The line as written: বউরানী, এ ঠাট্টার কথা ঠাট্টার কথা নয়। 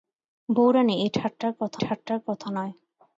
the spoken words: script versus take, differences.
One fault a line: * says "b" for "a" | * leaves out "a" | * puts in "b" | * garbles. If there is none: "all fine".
all fine